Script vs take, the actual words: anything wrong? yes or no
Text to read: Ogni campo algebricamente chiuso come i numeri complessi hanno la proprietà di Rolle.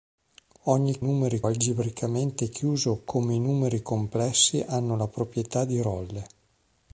yes